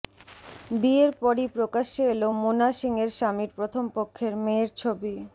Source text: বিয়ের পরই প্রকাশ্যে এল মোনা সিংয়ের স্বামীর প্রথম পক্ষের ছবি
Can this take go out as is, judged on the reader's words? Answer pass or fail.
fail